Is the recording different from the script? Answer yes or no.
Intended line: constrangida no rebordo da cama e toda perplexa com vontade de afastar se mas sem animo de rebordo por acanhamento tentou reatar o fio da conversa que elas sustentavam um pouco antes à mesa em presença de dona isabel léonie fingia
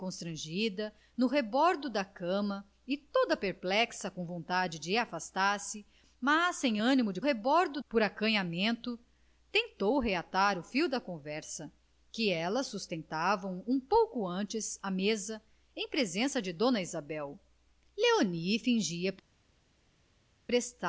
no